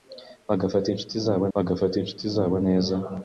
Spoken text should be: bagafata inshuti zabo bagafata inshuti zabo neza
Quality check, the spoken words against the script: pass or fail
pass